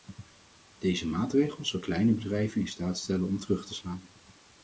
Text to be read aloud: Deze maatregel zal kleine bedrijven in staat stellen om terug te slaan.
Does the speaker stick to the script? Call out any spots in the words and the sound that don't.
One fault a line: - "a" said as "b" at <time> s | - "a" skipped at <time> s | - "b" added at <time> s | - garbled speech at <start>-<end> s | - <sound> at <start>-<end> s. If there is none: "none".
none